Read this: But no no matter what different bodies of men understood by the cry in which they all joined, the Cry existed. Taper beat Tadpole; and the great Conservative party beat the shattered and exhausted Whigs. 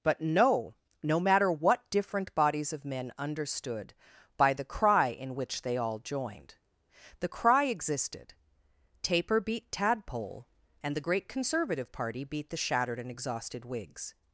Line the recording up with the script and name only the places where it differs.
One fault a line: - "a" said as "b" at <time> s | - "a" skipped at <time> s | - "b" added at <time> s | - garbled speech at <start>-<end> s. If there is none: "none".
none